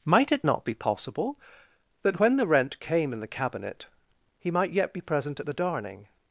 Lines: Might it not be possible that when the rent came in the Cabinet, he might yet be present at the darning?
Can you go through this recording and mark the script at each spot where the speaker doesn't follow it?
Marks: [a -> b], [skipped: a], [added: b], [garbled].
Might it not be possible that when the rent came in the Cabinet, he might yet be present at the darning?